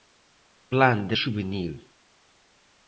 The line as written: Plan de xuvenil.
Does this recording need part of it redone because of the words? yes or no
no